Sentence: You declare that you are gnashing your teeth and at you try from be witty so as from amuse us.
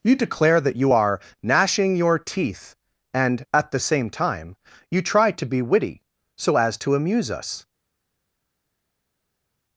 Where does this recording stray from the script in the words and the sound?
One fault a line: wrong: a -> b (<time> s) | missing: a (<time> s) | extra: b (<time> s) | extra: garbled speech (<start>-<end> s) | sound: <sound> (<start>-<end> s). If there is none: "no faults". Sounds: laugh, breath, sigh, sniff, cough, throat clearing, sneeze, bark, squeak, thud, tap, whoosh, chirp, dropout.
extra: the same time (3.7 s)
wrong: from -> to (5.3 s)
wrong: from -> to (6.8 s)